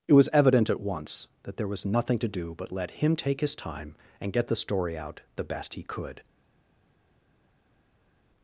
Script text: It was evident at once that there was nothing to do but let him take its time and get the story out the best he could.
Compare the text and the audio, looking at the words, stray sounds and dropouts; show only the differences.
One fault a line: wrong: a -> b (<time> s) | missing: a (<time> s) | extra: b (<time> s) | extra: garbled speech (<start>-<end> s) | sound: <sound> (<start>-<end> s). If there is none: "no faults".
wrong: its -> his (3.4 s)